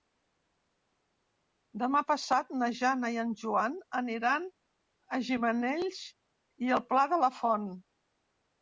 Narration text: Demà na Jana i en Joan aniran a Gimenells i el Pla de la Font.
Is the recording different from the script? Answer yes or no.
yes